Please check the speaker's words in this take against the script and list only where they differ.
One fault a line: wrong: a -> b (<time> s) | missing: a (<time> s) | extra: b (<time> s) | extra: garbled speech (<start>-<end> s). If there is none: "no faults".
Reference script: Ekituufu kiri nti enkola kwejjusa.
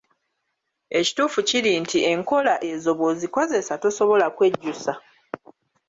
extra: ezo bw'ozikozesa tosobola (2.7 s)